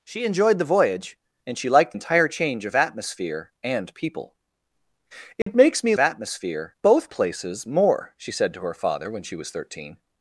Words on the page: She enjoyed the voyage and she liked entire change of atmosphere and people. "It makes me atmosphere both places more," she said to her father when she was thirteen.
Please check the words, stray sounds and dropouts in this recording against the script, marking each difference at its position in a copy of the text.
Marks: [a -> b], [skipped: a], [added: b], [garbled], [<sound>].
She enjoyed the voyage and she liked entire change of atmosphere and people. "It [dropout] makes me atmosphere both places more," she said to her father when she was thirteen.